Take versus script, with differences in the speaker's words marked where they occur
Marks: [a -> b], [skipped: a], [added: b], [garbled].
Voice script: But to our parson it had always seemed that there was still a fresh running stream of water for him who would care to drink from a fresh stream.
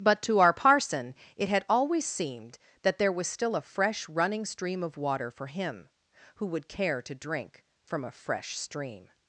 But to our parson it had always seemed that there was still a fresh running stream of water for him who would care to drink from a fresh stream.